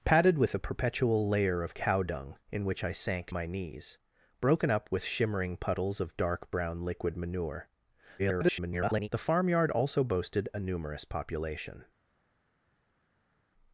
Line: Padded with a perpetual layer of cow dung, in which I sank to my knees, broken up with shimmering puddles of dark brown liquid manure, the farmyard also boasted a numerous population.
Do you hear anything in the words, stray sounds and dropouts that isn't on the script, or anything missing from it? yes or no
yes